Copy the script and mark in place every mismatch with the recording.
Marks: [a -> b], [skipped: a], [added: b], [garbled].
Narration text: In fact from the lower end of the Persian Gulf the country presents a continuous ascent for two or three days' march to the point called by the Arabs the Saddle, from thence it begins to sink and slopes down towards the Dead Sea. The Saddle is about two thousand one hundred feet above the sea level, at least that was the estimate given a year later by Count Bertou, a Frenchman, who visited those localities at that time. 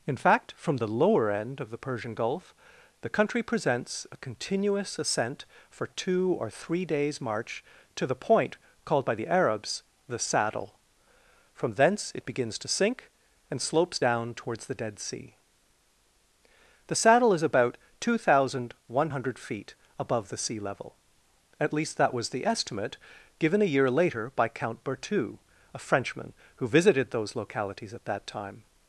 In fact from the lower end of the Persian Gulf the country presents a continuous ascent for two or three days' march to the point called by the Arabs the Saddle, from thence it begins to sink and slopes down towards the Dead Sea. The Saddle is about two thousand one hundred feet above the sea level, at least that was the estimate given a year later by Count Bertou, a Frenchman, who visited those localities at that time.